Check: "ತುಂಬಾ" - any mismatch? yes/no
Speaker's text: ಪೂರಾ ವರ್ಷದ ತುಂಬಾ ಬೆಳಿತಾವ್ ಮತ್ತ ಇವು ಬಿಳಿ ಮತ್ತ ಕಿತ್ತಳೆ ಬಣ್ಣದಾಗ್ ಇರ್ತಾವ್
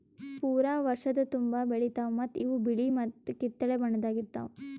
no